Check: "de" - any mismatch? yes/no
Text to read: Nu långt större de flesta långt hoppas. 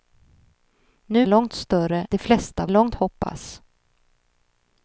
no